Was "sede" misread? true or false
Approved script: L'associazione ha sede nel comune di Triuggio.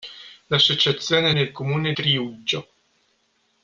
true